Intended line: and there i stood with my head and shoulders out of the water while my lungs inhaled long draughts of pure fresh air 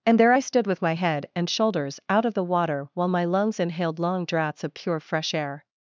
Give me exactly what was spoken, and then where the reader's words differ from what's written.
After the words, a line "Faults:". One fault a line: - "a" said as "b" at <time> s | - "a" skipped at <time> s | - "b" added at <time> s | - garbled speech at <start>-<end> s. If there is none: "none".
and there i stood with my head and shoulders out of the water while my lungs inhaled long draughts of pure fresh air
Faults:
none